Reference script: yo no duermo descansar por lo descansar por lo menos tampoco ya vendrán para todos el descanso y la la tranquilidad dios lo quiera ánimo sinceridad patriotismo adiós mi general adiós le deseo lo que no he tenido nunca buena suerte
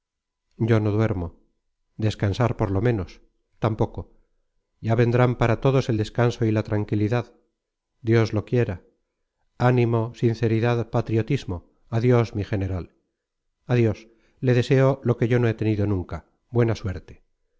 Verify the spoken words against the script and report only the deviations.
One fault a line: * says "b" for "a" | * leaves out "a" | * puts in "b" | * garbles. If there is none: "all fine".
* leaves out "descansar por lo"
* leaves out "la"
* puts in "yo"